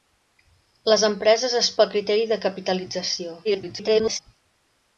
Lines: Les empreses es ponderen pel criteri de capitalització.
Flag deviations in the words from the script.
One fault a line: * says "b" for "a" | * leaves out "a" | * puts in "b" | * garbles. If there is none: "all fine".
* leaves out "ponderen"
* garbles